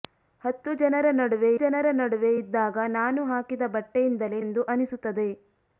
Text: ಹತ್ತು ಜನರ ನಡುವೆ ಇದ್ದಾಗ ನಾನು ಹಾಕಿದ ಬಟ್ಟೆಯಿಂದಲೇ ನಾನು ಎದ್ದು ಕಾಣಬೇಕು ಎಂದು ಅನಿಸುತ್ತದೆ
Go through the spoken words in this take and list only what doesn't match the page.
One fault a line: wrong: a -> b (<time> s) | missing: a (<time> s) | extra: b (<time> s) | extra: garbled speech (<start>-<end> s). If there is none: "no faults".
extra: ಜನರ ನಡುವೆ (1.6 s)
missing: ನಾನು ಎದ್ದು ಕಾಣಬೇಕು (4.4 s)